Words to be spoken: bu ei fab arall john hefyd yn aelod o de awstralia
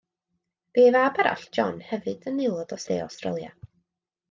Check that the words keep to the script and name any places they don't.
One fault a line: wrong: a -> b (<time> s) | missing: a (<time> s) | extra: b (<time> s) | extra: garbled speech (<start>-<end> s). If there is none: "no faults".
no faults